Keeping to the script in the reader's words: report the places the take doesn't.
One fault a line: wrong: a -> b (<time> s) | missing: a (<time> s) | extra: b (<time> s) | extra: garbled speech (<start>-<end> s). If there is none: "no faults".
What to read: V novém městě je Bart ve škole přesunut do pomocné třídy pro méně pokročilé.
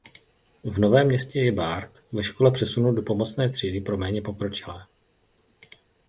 no faults